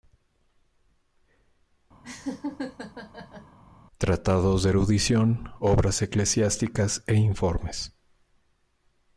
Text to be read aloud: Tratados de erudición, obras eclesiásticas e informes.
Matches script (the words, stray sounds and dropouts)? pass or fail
fail